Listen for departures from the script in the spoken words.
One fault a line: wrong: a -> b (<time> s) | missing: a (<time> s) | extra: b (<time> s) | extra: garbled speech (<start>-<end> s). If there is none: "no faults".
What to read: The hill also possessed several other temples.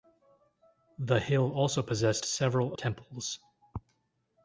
missing: other (2.8 s)